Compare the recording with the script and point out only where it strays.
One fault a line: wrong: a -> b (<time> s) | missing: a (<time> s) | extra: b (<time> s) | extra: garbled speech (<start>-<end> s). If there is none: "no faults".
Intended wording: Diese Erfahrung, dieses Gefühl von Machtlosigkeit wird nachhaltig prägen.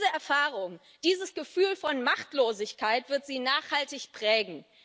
extra: sie (3.3 s)